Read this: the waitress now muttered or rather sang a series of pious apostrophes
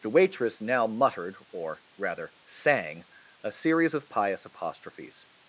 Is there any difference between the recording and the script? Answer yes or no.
no